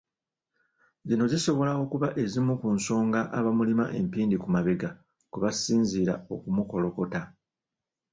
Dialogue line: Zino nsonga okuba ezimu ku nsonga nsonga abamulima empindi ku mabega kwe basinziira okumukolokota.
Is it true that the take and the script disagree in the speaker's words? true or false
true